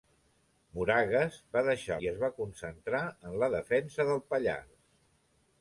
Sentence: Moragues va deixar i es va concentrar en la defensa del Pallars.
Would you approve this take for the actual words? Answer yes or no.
yes